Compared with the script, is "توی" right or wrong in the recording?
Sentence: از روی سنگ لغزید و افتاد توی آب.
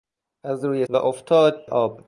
wrong